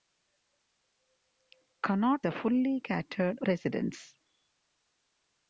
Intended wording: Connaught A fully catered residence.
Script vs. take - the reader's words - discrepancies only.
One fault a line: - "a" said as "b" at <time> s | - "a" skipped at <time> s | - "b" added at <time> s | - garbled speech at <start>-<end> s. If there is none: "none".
none